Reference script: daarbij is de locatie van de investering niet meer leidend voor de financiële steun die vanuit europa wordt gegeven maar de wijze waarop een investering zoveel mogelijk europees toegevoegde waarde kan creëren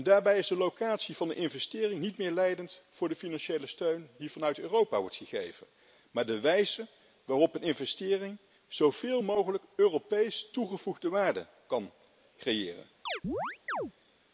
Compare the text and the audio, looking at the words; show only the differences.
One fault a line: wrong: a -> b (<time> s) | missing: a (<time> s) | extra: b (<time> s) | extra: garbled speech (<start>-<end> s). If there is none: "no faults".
no faults